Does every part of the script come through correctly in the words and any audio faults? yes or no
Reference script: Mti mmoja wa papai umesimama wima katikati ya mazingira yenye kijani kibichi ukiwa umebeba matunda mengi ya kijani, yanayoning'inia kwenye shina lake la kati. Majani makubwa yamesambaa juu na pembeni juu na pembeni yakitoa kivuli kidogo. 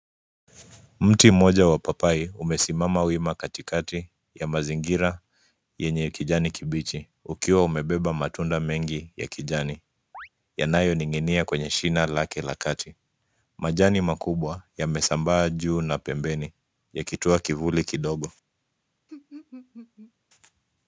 no